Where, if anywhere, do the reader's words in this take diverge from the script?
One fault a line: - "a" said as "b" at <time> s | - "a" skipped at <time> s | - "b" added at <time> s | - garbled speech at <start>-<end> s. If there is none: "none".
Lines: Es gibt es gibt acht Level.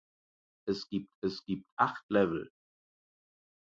none